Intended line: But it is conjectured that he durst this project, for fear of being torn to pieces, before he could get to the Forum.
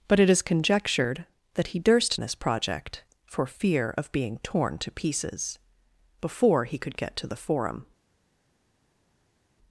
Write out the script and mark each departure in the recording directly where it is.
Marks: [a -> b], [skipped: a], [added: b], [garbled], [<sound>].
But it is conjectured that he durst this project, for fear of being torn to pieces, before he could get to the Forum.